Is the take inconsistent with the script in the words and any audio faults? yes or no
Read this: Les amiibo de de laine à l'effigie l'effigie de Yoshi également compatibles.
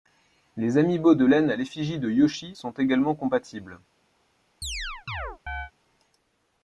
yes